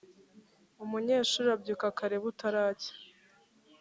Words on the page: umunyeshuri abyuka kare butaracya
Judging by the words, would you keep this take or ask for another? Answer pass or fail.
pass